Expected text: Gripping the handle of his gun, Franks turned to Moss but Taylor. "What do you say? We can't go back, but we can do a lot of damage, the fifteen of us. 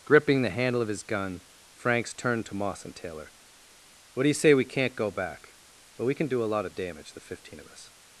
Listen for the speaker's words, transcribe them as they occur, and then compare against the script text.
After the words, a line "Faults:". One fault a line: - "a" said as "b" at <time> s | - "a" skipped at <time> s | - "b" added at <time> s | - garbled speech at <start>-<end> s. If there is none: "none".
Gripping the handle of his gun, Franks turned to Moss and Taylor. "What do you say? We can't go back, but we can do a lot of damage, the fifteen of us.
Faults:
- "but" said as "and" at 2.9 s